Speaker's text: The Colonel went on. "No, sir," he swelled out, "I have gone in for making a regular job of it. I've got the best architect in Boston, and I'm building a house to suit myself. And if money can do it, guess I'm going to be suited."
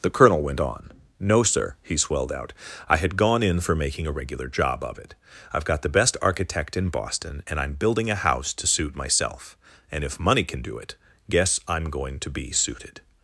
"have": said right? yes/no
no